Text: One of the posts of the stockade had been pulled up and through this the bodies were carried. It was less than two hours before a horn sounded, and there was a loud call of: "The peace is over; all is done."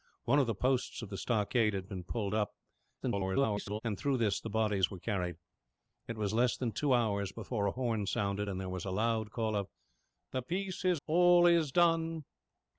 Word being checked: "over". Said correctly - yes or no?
no